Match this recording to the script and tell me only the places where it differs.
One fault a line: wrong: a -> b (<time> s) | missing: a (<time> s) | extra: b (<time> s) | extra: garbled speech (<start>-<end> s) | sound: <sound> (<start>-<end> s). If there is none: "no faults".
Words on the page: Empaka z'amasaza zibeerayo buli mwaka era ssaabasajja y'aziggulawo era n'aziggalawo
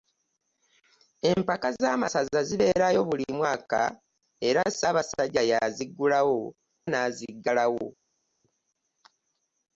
missing: era (6.4 s)